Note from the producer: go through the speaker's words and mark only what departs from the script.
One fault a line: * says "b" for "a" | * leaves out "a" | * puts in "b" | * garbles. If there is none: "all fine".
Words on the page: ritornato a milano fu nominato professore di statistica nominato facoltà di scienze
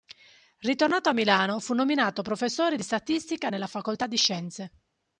* says "nella" for "nominato"